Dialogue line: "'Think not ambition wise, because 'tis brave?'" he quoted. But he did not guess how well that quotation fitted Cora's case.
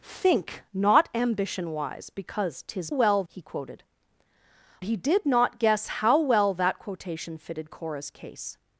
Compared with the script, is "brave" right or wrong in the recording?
wrong